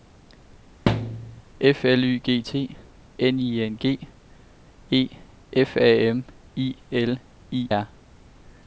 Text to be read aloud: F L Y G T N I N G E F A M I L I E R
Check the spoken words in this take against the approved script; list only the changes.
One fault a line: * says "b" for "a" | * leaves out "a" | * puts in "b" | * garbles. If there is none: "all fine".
* leaves out "E"